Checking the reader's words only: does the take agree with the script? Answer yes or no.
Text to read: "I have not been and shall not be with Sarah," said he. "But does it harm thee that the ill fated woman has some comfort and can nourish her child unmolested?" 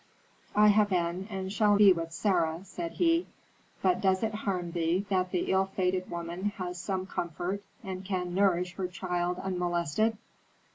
no